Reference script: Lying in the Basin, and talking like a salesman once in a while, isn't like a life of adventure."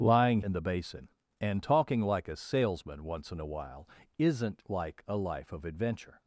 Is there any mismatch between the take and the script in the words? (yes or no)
no